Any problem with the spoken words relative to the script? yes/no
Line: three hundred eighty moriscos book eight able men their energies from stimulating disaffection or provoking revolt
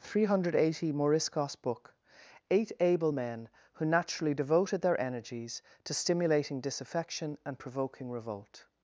yes